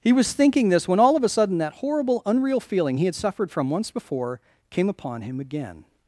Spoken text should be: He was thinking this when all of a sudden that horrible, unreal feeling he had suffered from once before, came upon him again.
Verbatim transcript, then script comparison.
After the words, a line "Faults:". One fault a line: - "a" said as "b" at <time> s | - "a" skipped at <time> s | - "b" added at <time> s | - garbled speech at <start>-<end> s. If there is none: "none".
He was thinking this when all of a sudden that horrible, unreal feeling he had suffered from once before, came upon him again.
Faults:
none